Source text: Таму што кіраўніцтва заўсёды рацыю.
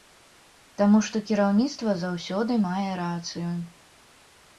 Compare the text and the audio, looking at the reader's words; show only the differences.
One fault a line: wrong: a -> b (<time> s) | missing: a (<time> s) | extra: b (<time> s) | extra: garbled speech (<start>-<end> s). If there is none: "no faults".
extra: мае (2.6 s)